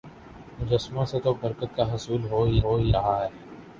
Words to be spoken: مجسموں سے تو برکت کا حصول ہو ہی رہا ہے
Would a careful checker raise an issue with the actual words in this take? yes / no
yes